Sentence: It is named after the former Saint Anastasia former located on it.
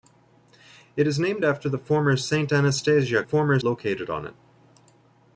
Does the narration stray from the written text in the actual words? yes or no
no